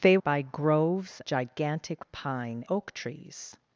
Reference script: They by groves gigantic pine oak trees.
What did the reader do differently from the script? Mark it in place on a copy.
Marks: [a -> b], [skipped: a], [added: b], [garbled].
They by groves gigantic pine oak trees.